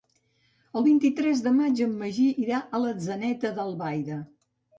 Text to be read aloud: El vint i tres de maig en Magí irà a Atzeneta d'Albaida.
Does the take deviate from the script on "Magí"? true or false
false